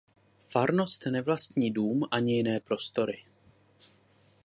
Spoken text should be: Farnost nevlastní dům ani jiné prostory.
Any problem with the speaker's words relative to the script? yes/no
no